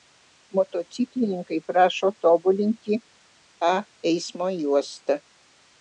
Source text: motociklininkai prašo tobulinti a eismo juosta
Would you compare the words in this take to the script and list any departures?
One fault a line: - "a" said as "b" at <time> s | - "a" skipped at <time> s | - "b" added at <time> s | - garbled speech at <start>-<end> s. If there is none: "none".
none